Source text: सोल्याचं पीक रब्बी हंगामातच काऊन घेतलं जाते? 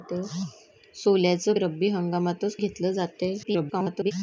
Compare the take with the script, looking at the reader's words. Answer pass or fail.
fail